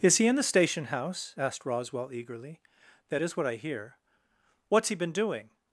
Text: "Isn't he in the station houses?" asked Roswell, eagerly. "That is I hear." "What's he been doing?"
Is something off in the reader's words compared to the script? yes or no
yes